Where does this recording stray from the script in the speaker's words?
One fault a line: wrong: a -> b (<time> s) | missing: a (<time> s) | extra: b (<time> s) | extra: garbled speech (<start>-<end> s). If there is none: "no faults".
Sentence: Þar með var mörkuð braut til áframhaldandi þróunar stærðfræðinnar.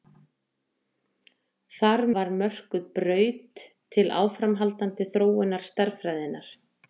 missing: með (2.0 s)